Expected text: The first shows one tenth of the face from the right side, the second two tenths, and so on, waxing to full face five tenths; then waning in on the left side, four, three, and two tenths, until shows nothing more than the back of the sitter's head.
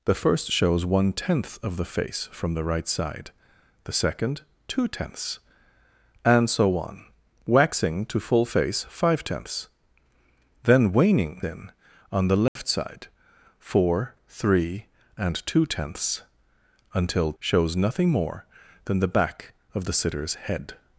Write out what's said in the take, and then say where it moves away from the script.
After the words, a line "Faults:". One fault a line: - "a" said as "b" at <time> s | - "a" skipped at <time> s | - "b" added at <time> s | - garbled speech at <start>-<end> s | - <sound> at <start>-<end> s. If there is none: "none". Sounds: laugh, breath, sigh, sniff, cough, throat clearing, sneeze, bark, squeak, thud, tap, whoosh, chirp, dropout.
The first shows one tenth of the face from the right side, the second two tenths, and so on, waxing to full face five tenths; then waning in on the left side, four, three, and two tenths, until shows nothing more than the back of the sitter's head.
Faults:
- dropout at 12.5-12.6 s